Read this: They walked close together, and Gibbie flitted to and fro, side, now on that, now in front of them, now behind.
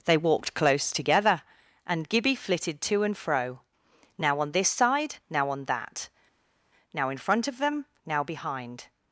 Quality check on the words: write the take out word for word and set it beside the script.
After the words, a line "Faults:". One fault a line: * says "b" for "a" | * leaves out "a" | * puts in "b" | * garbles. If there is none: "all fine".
They walked close together, and Gibbie flitted to and fro, now on this side, now on that, now in front of them, now behind.
Faults:
* puts in "now on this"